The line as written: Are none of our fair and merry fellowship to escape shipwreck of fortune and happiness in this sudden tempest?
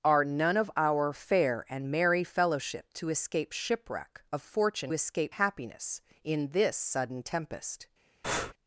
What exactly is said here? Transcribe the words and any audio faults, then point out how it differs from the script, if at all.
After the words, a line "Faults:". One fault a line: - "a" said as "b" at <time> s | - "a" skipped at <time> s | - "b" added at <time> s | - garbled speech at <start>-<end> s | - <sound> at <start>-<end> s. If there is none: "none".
Are none of our fair and merry fellowship to escape shipwreck of fortune escape happiness in this sudden tempest?
Faults:
- "and" said as "escape" at 4.9 s
- breath at 8.2-8.5 s